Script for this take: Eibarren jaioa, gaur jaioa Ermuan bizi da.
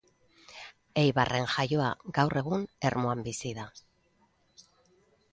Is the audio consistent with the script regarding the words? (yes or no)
no